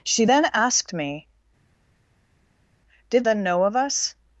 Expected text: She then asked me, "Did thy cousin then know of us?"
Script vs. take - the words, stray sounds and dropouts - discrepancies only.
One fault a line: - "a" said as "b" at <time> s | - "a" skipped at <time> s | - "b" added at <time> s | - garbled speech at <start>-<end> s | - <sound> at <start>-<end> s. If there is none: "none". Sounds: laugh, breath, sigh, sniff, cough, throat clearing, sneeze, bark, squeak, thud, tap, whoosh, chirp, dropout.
- "thy cousin" skipped at 3.3 s